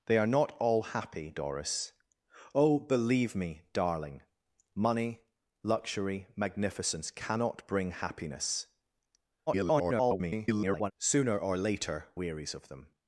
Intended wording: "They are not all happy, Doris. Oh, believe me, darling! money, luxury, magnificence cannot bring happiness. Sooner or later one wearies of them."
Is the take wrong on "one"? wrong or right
wrong